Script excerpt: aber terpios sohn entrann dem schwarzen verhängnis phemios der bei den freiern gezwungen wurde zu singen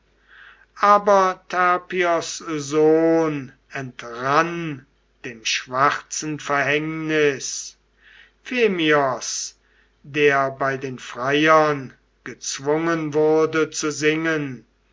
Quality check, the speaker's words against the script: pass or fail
pass